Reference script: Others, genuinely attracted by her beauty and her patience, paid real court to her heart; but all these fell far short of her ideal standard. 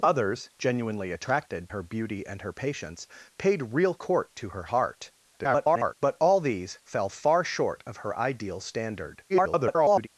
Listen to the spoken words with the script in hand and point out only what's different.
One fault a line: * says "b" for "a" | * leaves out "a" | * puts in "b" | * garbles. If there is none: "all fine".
* leaves out "by"
* garbles
* garbles